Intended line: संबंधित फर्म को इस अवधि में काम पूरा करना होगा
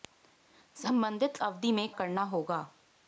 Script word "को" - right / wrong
wrong